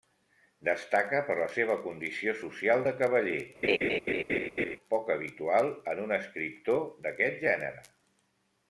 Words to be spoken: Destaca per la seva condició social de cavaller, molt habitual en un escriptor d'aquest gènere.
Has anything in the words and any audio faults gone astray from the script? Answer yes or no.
yes